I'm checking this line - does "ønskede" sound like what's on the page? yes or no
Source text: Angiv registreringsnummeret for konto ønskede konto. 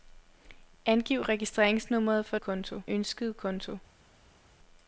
yes